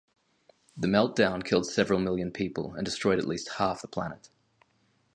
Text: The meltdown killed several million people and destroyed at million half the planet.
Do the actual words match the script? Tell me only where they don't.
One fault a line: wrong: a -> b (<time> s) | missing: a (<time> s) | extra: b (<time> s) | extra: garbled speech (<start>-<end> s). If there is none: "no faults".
wrong: million -> least (3.3 s)